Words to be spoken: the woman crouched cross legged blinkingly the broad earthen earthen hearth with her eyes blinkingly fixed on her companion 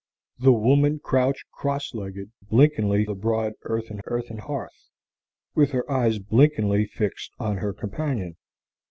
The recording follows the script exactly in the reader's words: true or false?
true